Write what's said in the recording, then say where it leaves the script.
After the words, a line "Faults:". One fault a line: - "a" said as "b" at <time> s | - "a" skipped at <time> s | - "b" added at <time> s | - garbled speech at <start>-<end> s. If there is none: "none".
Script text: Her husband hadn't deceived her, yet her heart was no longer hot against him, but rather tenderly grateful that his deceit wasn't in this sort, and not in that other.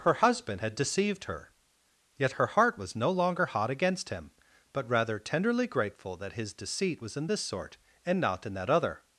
Her husband had deceived her, yet her heart was no longer hot against him, but rather tenderly grateful that his deceit was in this sort, and not in that other.
Faults:
- "hadn't" said as "had" at 0.6 s
- "wasn't" said as "was" at 7.0 s